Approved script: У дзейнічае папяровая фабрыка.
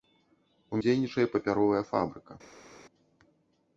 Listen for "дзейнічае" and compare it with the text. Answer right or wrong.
right